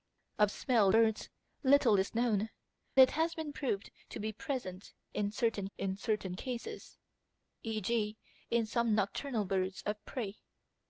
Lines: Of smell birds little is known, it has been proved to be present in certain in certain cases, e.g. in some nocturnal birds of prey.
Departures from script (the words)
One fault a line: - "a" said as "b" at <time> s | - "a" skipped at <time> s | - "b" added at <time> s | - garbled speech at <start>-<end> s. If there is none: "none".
none